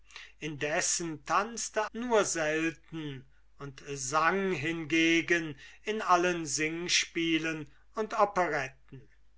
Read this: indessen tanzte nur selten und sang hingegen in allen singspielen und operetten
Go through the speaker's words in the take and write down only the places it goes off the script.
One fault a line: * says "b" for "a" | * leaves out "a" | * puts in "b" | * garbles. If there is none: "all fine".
all fine